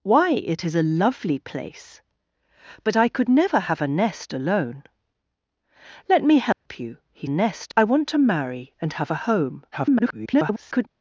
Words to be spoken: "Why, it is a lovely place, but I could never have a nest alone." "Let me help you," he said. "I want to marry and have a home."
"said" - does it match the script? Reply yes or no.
no